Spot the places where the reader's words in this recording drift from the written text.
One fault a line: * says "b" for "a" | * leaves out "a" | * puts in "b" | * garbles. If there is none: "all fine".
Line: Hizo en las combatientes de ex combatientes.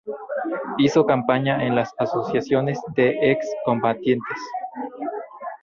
* puts in "campaña"
* says "asociaciones" for "combatientes"